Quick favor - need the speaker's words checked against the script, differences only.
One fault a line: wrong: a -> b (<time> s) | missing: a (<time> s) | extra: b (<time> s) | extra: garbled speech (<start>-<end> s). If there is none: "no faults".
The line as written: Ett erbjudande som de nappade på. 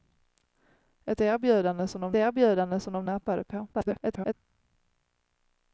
extra: erbjudande som de (2.1 s)
extra: garbled speech (3.7-4.3 s)